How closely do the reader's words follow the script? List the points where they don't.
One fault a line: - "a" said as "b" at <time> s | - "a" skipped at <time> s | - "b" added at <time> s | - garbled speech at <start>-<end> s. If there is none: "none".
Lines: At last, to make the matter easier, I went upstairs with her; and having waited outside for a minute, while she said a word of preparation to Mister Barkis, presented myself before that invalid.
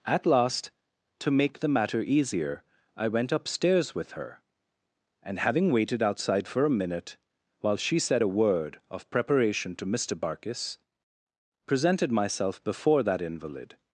none